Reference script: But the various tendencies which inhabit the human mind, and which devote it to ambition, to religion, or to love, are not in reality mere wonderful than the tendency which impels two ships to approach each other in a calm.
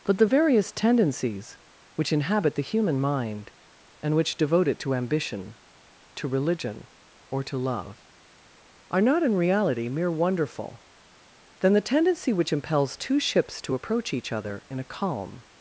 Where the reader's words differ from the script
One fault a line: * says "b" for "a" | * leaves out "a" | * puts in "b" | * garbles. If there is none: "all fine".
all fine